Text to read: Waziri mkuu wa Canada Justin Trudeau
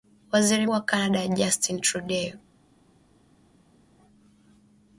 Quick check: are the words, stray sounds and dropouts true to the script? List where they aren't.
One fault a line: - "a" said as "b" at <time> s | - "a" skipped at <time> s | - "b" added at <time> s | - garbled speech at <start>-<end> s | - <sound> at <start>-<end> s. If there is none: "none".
- "mkuu" skipped at 0.7 s